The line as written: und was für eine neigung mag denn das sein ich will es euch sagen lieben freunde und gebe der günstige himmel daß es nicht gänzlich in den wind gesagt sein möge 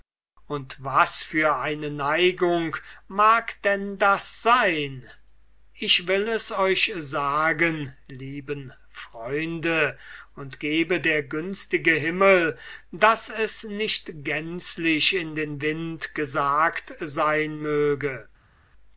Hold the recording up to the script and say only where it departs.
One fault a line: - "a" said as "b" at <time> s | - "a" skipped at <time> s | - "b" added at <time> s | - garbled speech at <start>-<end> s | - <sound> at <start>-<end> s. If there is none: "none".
none